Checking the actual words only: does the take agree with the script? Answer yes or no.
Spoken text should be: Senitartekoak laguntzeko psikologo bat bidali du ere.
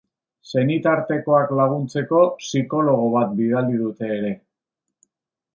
no